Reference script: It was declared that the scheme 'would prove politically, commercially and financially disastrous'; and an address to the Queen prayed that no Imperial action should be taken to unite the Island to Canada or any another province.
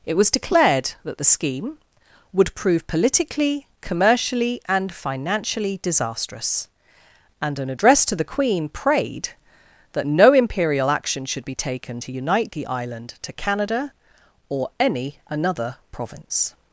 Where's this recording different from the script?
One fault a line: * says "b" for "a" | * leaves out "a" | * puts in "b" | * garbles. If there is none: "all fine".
all fine